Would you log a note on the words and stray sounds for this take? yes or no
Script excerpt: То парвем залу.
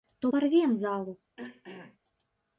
yes